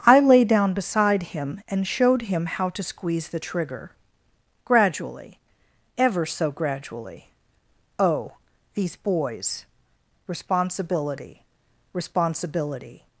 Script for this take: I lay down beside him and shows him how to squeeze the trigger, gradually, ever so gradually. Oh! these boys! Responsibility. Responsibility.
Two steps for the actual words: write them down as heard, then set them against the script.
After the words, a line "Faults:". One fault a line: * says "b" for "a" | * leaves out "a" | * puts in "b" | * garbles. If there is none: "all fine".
I lay down beside him and showed him how to squeeze the trigger, gradually, ever so gradually. Oh! these boys! Responsibility. Responsibility.
Faults:
* says "showed" for "shows"